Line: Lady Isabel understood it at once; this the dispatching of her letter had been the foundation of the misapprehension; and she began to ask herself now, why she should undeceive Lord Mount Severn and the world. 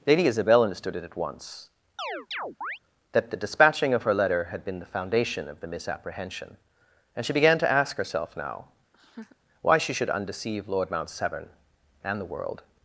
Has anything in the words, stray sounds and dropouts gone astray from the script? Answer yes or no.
yes